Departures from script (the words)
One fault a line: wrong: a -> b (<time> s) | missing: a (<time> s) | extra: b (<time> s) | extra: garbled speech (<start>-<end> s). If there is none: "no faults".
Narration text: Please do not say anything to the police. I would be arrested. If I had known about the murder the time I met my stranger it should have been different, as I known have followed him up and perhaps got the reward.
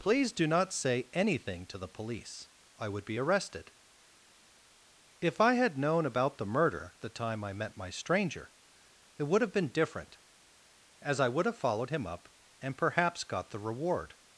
wrong: should -> would (9.2 s)
wrong: known -> would (11.3 s)